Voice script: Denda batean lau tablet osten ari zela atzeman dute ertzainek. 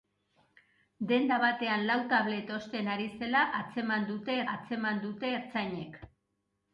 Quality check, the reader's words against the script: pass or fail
fail